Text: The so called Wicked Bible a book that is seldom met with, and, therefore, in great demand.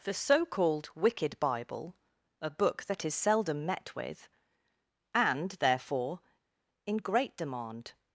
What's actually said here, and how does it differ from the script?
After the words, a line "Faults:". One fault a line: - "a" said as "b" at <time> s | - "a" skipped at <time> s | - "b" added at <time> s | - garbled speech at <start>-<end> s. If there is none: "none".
The so called Wicked Bible a book that is seldom met with, and, therefore, in great demand.
Faults:
none